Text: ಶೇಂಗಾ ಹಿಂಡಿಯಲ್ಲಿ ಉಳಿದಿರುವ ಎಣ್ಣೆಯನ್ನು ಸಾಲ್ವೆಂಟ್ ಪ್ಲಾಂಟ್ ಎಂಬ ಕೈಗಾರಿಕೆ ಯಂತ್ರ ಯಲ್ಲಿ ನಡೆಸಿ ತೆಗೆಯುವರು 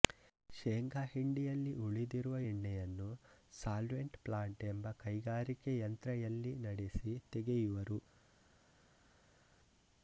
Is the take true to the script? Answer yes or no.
yes